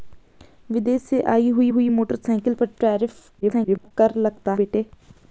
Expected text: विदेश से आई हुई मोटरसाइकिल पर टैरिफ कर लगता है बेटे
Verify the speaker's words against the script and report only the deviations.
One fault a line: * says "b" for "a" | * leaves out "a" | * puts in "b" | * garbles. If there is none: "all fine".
* puts in "हुई"
* garbles
* leaves out "है"